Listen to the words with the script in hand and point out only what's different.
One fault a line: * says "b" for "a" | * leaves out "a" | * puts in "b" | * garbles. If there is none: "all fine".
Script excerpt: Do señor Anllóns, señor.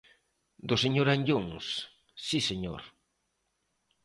* puts in "si"